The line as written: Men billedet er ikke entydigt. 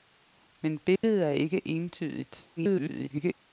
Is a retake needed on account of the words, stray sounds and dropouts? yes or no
yes